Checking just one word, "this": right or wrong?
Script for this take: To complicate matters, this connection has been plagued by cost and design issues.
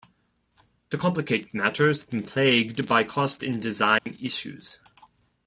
wrong